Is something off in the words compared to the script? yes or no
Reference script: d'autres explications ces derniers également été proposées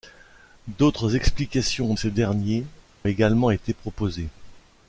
no